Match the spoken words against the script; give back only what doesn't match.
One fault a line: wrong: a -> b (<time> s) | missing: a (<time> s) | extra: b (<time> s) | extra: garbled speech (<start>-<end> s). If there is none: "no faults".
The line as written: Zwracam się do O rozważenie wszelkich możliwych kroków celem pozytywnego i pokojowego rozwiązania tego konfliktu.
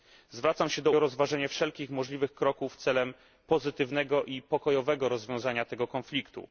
no faults